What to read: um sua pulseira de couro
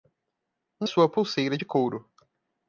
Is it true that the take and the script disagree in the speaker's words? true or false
false